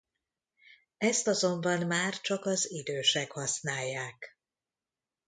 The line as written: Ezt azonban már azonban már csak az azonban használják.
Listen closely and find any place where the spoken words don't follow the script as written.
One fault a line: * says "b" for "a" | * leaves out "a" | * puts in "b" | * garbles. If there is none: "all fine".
* leaves out "azonban már"
* says "idősek" for "azonban"